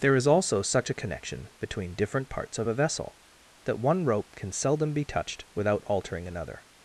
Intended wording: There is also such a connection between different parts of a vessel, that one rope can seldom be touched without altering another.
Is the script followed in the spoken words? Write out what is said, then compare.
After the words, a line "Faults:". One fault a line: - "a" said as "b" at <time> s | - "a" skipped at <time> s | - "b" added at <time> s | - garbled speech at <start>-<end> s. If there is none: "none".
There is also such a connection between different parts of a vessel, that one rope can seldom be touched without altering another.
Faults:
none